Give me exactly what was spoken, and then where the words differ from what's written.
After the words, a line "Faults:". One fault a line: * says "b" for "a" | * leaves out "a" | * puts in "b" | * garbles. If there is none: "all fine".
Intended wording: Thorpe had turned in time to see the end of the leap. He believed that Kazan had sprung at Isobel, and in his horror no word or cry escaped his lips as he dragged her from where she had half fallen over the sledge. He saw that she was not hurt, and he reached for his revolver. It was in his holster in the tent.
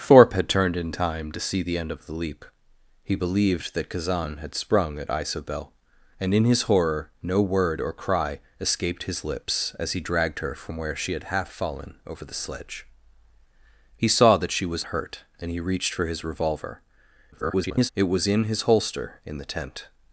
Thorpe had turned in time to see the end of the leap. He believed that Kazan had sprung at Isobel, and in his horror no word or cry escaped his lips as he dragged her from where she had half fallen over the sledge. He saw that she was hurt, and he reached for his revolver. [garbled] It was in his holster in the tent.
Faults:
* leaves out "not"
* garbles